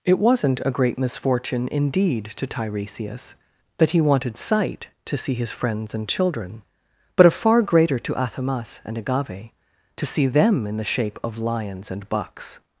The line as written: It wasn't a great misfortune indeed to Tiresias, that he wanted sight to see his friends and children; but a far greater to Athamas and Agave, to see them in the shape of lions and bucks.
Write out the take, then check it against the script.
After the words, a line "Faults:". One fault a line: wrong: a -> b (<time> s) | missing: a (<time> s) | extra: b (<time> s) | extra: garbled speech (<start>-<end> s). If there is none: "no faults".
It wasn't a great misfortune indeed to Tiresias, that he wanted sight to see his friends and children; but a far greater to Athamas and Agave, to see them in the shape of lions and bucks.
Faults:
no faults